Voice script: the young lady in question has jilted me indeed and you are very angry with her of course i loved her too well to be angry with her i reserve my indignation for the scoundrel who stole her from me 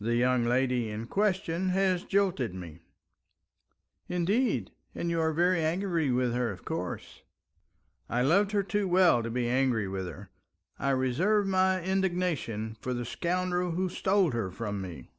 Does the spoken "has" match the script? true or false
true